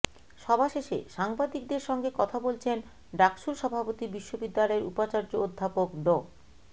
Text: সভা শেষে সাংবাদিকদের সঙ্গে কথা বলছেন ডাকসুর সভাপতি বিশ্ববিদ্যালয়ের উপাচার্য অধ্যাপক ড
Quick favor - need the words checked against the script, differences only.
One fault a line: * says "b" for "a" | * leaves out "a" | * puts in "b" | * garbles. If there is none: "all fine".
all fine